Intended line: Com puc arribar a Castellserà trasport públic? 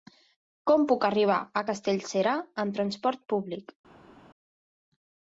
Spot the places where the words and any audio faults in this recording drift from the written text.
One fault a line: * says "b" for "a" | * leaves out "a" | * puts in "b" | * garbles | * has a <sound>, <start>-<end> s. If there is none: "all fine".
* puts in "amb"